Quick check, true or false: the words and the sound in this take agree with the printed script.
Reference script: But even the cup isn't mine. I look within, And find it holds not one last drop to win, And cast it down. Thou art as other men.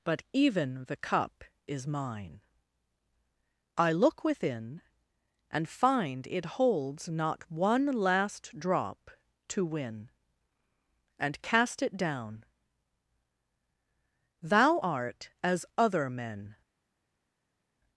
false